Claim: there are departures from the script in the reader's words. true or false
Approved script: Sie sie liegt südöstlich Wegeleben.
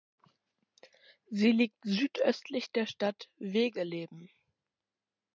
true